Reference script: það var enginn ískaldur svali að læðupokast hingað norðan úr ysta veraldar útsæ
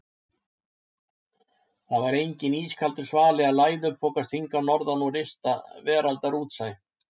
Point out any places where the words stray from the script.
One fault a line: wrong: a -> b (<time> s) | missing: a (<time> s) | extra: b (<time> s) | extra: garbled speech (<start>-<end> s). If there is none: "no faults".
no faults